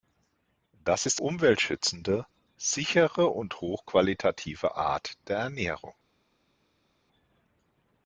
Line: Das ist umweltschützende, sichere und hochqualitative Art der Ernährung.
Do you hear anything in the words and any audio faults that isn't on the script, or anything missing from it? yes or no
no